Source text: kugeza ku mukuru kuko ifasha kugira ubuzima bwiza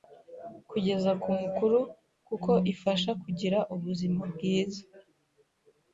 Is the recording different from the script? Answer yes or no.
no